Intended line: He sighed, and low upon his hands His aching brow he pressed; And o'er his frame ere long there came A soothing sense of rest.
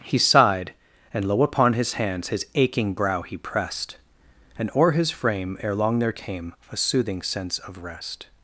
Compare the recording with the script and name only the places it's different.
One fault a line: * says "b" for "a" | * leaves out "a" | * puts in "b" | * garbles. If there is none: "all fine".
all fine